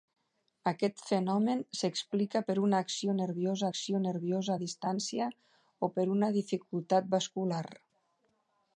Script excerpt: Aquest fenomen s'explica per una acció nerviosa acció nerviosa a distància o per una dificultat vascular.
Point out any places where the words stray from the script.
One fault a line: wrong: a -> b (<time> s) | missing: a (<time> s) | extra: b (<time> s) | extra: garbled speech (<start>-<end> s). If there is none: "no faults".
no faults